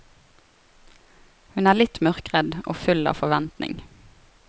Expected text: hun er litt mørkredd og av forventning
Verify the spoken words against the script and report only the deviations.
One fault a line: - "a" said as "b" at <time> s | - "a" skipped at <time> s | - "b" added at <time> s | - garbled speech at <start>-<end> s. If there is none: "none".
- "full" added at 2.9 s